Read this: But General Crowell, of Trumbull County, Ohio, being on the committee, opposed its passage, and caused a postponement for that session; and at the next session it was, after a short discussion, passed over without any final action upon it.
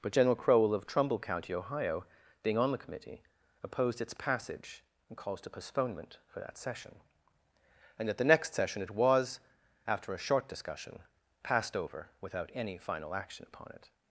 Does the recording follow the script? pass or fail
pass